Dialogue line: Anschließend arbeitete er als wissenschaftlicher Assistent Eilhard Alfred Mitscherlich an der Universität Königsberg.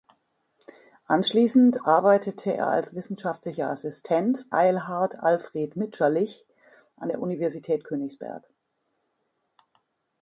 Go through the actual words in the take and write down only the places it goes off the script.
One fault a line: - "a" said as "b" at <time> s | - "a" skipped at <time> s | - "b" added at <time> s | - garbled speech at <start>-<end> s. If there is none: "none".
none